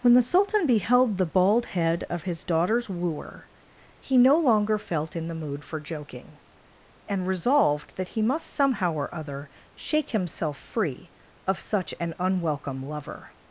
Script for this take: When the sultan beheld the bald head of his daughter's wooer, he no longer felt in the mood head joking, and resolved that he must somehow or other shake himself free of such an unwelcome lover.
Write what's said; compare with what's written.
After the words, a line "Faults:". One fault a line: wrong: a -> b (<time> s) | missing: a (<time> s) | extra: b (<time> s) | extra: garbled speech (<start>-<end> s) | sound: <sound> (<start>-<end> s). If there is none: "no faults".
When the sultan beheld the bald head of his daughter's wooer, he no longer felt in the mood for joking, and resolved that he must somehow or other shake himself free of such an unwelcome lover.
Faults:
wrong: head -> for (5.6 s)